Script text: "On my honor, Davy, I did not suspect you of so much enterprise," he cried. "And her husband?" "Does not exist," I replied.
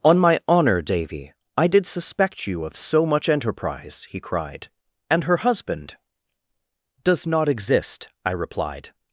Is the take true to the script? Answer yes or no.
no